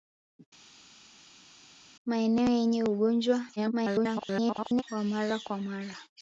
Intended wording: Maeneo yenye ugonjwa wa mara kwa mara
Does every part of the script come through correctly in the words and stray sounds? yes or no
no